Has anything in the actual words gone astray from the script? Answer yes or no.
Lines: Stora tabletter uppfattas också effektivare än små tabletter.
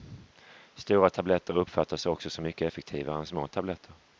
yes